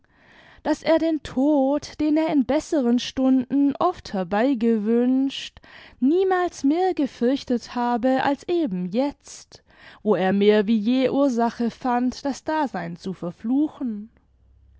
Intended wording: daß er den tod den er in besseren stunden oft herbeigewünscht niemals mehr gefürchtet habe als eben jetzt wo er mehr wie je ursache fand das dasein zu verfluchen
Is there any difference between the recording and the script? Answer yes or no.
no